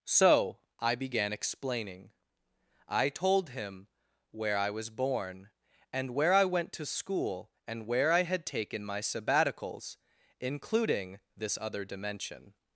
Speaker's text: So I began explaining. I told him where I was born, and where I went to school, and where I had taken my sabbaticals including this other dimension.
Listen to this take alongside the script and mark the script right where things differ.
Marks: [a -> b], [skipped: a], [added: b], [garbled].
So I began explaining. I told him where I was born, and where I went to school, and where I had taken my sabbaticals including this other dimension.